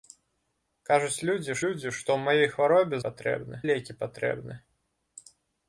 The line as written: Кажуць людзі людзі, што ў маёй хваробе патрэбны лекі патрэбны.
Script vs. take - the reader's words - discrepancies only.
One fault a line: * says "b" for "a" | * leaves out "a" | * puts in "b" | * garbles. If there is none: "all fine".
all fine